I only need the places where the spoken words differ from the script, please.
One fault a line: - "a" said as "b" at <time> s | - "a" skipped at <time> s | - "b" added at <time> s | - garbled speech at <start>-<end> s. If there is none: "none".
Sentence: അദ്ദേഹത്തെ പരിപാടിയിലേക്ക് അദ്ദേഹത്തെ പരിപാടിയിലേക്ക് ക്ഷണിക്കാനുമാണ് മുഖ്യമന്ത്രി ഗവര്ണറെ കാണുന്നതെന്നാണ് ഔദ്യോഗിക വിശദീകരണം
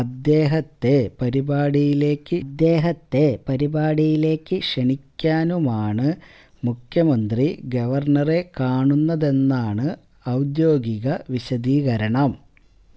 none